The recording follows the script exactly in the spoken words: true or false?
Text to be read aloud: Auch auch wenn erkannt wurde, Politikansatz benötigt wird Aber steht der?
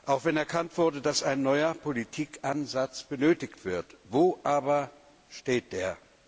false